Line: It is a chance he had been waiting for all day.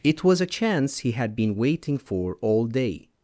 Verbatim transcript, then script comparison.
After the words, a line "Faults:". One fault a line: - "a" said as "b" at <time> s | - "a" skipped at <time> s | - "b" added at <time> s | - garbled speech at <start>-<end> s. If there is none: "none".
It was a chance he had been waiting for all day.
Faults:
- "is" said as "was" at 0.2 s